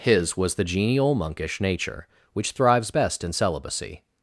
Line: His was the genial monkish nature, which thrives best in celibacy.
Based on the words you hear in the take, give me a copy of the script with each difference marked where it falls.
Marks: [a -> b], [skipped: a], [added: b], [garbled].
His was the genial monkish nature, which thrives best in celibacy.